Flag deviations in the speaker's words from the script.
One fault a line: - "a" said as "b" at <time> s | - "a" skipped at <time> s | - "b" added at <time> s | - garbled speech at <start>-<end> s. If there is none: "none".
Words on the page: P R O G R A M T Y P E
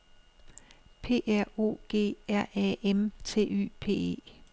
none